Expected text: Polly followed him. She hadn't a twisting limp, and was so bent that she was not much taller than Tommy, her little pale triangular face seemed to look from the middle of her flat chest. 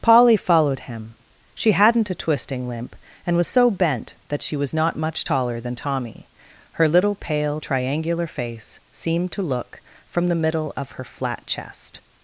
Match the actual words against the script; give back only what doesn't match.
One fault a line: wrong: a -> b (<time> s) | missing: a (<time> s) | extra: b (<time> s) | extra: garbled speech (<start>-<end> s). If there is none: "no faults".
no faults